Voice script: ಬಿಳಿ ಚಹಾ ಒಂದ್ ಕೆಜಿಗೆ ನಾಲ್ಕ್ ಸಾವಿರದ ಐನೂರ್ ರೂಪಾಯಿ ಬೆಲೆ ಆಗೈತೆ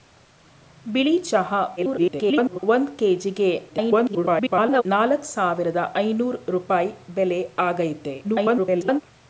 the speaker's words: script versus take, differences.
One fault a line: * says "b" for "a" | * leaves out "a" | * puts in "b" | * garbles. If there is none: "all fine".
* garbles
* garbles
* garbles